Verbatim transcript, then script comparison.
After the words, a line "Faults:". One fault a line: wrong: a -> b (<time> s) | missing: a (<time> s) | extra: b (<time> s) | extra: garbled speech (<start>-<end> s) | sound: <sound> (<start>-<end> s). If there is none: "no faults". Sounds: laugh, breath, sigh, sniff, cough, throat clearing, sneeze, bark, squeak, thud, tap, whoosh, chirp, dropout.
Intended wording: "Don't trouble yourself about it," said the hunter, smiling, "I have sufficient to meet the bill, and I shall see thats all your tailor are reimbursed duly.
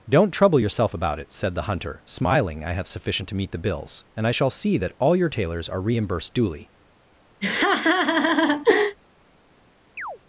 "Don't trouble yourself about it," said the hunter, smiling, "I have sufficient to meet the bills, and I shall see that all your tailors are reimbursed duly.
Faults:
wrong: bill -> bills (3.6 s)
wrong: thats -> that (4.8 s)
wrong: tailor -> tailors (5.3 s)
sound: laugh (7.4-9.0 s)
sound: chirp (10.0-10.2 s)